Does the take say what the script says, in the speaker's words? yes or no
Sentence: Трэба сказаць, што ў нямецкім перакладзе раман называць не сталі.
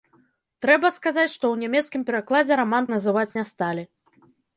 yes